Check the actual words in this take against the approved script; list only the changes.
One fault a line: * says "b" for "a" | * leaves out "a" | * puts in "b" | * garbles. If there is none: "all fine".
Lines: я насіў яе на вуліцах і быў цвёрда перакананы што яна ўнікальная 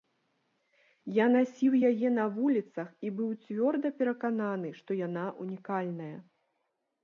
all fine